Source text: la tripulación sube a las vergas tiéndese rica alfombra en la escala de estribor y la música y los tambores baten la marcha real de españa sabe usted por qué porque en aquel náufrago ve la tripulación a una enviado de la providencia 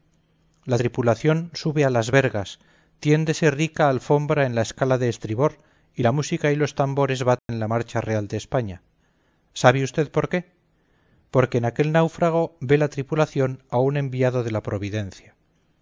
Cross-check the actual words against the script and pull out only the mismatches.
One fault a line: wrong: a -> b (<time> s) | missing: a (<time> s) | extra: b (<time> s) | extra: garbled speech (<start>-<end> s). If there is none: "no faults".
wrong: una -> un (13.8 s)